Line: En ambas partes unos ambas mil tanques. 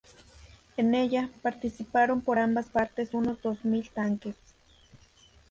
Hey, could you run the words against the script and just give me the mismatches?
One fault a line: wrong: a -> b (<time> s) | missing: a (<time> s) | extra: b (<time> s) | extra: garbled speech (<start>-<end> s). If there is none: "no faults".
extra: ella participaron por (0.9 s)
wrong: ambas -> dos (3.4 s)